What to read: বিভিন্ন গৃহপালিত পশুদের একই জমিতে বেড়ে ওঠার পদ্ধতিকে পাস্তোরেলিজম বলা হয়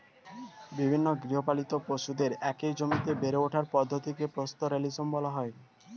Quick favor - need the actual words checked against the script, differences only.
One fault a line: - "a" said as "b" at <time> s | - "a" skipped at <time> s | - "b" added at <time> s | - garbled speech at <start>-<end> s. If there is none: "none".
none